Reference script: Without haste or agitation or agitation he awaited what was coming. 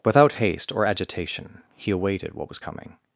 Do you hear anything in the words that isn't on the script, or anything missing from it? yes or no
yes